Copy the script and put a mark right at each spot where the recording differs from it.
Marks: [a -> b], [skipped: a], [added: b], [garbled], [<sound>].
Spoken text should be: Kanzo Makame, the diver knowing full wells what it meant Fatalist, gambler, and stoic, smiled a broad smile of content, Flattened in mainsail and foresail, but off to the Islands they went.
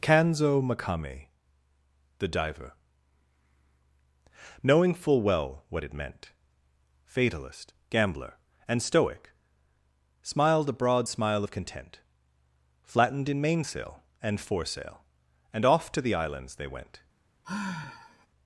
Kanzo Makame, the diver knowing full [wells -> well] what it meant Fatalist, gambler, and stoic, smiled a broad smile of content, Flattened in mainsail and foresail, [but -> and] off to the Islands they went. [sigh]